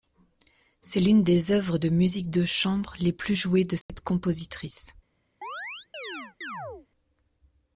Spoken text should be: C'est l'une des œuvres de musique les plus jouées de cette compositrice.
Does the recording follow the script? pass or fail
fail